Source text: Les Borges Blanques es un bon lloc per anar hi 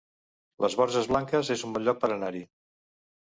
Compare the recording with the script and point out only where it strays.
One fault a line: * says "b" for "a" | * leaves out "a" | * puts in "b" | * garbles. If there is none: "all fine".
all fine